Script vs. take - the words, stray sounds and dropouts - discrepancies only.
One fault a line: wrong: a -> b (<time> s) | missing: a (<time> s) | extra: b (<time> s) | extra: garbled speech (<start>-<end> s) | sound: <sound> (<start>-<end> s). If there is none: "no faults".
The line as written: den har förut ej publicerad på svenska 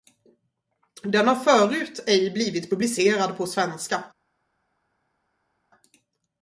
extra: blivit (2.3 s)